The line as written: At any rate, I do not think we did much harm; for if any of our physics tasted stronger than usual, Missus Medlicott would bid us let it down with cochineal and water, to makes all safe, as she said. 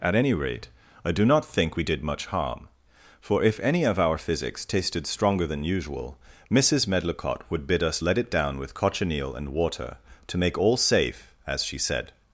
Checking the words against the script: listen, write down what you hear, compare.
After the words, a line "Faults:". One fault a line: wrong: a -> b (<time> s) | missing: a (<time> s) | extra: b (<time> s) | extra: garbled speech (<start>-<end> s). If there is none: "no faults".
At any rate, I do not think we did much harm; for if any of our physics tasted stronger than usual, Missus Medlicott would bid us let it down with cochineal and water, to make all safe, as she said.
Faults:
wrong: makes -> make (10.4 s)